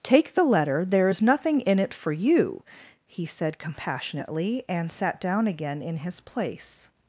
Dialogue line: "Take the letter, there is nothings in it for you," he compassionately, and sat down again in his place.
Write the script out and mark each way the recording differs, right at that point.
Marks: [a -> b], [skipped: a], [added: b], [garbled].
"Take the letter, there is [nothings -> nothing] in it for you," he [added: said] compassionately, and sat down again in his place.